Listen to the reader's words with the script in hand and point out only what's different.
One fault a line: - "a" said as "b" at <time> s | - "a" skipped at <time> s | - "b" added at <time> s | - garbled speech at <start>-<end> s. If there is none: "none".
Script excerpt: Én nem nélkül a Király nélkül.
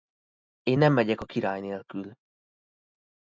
- "nélkül" said as "megyek" at 0.9 s